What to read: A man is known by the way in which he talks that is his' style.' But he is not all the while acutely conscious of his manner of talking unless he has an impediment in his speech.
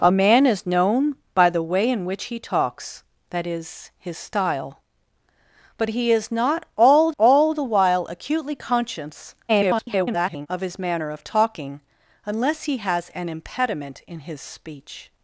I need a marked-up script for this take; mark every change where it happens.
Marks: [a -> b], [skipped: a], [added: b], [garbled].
A man is known by the way in which he talks that is his' style.' But he is not all [added: all] the while acutely conscious [garbled] of his manner of talking unless he has an impediment in his speech.